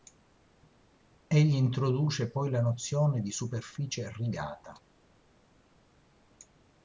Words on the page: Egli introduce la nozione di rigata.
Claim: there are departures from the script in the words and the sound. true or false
true